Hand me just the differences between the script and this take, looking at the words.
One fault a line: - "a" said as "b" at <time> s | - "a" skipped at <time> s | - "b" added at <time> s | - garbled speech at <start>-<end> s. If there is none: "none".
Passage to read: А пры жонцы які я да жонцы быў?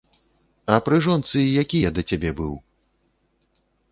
- "жонцы" said as "цябе" at 2.1 s